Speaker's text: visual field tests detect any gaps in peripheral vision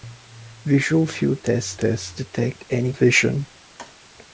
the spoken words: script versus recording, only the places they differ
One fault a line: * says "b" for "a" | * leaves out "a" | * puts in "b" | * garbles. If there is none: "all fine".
* puts in "tests"
* leaves out "gaps in peripheral"